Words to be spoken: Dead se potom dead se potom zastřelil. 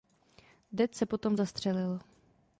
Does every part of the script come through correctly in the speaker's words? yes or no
no